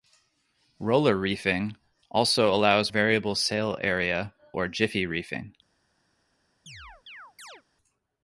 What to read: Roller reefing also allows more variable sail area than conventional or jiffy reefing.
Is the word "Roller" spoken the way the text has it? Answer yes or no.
yes